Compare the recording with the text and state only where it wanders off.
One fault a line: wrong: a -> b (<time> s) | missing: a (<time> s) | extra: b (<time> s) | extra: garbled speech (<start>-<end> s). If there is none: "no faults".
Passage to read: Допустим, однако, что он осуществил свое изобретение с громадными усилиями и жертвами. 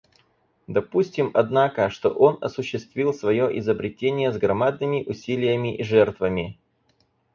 no faults